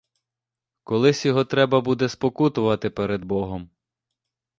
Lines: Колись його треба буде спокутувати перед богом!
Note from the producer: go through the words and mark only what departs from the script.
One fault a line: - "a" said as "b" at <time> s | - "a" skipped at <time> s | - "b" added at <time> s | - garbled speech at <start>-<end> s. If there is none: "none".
none